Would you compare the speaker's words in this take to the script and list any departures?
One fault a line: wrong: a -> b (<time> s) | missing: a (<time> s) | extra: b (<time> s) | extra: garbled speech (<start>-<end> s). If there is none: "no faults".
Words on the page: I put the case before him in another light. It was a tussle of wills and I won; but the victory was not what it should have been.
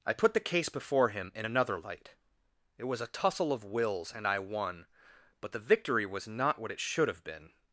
no faults